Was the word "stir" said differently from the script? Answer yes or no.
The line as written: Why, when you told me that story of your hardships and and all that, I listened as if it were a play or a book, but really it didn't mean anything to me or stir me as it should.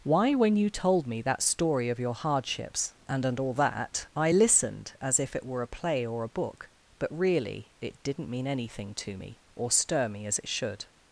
no